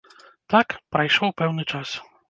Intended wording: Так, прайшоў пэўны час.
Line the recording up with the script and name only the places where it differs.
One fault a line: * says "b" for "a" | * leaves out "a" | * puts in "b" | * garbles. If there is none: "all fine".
all fine